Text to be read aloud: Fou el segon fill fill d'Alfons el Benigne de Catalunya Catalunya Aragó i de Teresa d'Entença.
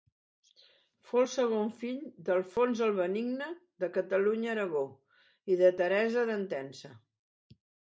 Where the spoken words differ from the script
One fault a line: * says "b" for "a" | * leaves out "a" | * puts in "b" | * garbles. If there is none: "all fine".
* leaves out "fill"
* leaves out "Catalunya"